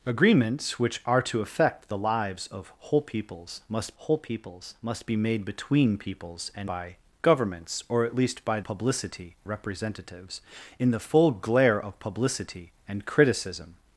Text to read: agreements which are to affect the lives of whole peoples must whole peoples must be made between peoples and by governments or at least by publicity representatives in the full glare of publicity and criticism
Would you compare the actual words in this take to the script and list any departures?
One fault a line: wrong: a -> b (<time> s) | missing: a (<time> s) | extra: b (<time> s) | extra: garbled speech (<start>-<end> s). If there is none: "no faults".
no faults